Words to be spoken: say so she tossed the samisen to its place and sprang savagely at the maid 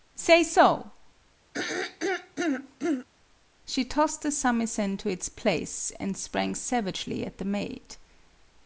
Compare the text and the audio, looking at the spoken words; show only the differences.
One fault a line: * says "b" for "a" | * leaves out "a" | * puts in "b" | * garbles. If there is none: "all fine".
all fine